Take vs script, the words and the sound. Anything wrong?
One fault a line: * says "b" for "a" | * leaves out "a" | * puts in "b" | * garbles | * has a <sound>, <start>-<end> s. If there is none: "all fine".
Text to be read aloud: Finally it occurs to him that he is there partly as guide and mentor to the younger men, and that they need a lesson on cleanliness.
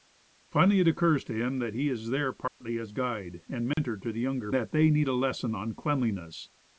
* has a dropout, 2.5-2.6 s
* has a dropout, 3.7-3.8 s
* leaves out "men and"